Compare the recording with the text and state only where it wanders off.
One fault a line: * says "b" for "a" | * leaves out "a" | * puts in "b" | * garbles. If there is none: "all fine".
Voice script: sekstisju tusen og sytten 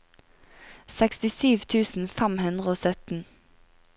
* puts in "fem hundre"